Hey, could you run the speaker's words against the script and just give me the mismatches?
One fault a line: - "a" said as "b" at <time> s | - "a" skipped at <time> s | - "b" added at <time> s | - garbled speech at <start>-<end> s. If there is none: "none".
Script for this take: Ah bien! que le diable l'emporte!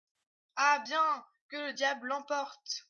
none